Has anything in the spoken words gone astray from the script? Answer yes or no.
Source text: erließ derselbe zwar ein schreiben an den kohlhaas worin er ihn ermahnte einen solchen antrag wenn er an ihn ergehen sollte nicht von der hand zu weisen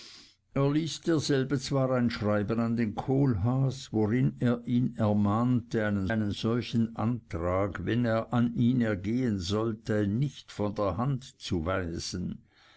yes